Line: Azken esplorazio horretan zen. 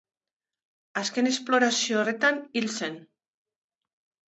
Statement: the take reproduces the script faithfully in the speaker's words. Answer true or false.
false